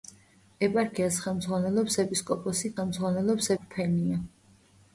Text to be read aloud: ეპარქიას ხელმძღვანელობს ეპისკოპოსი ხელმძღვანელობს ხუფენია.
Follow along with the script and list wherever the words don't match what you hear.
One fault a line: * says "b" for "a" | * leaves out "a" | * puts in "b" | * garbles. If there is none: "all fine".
all fine